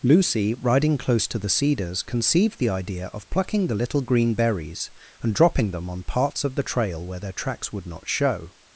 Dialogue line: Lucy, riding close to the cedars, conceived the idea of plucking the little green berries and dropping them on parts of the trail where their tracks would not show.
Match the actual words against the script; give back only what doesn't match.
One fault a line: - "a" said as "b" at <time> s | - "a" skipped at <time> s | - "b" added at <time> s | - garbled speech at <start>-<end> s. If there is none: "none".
none